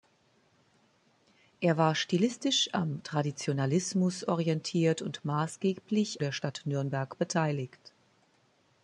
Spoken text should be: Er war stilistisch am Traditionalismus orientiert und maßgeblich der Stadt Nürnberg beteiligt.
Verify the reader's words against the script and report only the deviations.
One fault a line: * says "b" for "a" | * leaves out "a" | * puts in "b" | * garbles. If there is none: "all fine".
all fine